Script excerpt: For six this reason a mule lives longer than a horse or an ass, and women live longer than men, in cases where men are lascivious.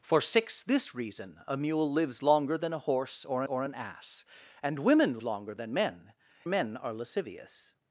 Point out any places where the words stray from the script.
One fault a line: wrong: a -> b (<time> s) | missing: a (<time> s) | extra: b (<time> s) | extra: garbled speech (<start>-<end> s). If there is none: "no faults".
extra: or (3.4 s)
missing: live (5.2 s)
missing: in cases where (6.1 s)